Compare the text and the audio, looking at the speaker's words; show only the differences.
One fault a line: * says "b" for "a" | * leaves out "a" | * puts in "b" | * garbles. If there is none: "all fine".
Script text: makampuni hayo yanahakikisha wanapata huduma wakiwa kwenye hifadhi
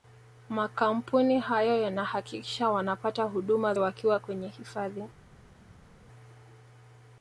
all fine